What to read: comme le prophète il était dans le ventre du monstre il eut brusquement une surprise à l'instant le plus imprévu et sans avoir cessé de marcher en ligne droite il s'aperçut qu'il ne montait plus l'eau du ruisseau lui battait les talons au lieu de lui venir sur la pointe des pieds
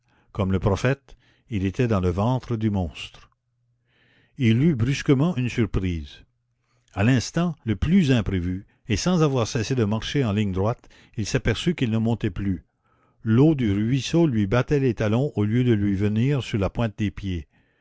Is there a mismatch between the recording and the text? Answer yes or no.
no